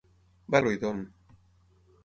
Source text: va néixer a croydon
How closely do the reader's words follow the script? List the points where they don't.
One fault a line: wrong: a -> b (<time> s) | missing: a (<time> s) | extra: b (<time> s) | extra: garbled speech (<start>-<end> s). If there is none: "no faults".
missing: néixer (0.6 s)